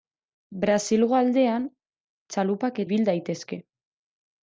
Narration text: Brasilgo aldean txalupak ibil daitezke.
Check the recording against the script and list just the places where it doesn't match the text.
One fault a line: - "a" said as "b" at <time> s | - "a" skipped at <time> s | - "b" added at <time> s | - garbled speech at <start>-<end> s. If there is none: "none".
none